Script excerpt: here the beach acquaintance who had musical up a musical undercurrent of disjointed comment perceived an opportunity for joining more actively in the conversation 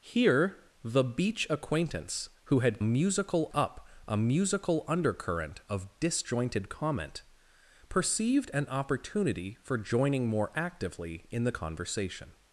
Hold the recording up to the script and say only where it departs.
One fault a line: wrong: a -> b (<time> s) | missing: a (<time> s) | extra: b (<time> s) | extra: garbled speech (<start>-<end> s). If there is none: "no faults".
no faults